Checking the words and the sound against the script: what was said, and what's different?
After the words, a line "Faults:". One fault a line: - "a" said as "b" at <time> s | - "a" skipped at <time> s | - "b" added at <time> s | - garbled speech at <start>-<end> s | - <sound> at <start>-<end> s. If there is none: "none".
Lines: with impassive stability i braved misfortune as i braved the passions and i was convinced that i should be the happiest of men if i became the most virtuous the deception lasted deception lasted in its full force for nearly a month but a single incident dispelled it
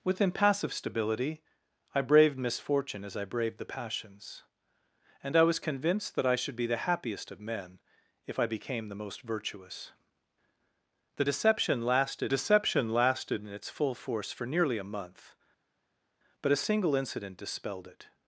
with impassive stability i braved misfortune as i braved the passions and i was convinced that i should be the happiest of men if i became the most virtuous the deception lasted deception lasted in its full force for nearly a month but a single incident dispelled it
Faults:
none